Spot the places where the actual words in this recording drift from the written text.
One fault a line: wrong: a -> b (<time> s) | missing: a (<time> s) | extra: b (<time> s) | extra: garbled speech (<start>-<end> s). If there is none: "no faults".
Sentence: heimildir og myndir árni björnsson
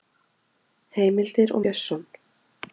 missing: myndir árni (1.6 s)